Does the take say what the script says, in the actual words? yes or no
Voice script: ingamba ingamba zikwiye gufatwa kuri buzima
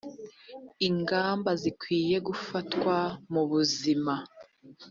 no